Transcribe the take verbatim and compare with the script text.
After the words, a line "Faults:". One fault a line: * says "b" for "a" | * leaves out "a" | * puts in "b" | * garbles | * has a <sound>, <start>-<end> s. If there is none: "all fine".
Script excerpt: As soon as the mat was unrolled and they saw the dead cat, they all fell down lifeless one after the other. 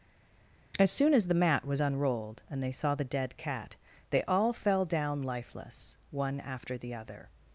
As soon as the mat was unrolled and they saw the dead cat, they all fell down lifeless one after the other.
Faults:
all fine